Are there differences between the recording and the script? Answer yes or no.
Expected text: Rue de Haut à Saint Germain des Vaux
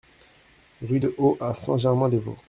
no